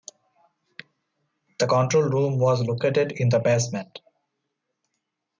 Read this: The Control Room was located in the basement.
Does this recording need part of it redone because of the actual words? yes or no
no